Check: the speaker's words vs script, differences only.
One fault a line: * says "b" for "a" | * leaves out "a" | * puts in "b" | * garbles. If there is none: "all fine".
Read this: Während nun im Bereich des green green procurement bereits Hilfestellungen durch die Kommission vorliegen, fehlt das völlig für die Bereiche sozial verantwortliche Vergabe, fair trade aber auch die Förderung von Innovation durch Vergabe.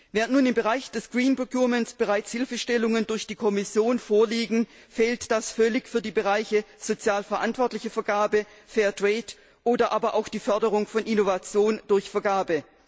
* leaves out "green"
* puts in "oder"